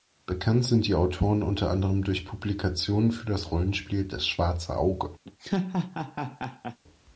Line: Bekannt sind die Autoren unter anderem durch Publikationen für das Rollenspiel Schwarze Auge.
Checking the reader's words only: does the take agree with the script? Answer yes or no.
no